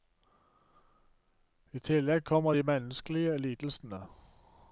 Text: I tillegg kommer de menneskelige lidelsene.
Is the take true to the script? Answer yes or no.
yes